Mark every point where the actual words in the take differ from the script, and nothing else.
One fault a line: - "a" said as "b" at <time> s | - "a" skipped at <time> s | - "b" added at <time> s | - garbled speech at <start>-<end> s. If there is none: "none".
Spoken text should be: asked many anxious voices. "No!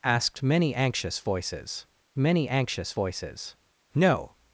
- "many anxious voices" added at 2.2 s